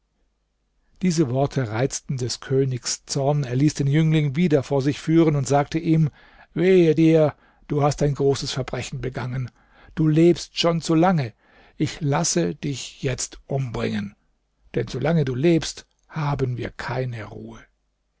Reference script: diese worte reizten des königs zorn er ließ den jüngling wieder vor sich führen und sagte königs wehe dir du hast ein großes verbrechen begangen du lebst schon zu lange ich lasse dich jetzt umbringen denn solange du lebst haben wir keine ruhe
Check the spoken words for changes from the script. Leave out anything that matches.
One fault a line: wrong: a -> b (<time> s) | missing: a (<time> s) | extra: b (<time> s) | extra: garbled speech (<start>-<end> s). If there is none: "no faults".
wrong: königs -> ihm (5.8 s)